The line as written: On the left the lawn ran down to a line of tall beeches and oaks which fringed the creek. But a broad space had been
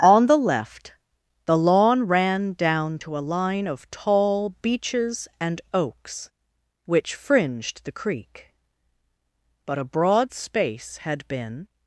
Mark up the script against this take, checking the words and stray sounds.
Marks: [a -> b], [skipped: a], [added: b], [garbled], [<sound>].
On the left the lawn ran down to a line of tall beeches and oaks which fringed the creek. But a broad space had been